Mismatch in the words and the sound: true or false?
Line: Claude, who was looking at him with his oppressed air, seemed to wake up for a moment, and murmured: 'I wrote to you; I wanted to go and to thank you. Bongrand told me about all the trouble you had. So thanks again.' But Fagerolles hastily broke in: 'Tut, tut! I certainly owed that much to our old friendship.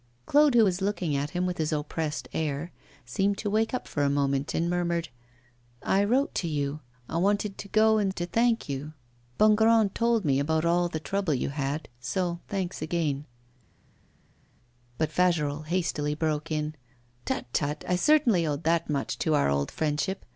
false